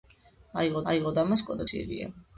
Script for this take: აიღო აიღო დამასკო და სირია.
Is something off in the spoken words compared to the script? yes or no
no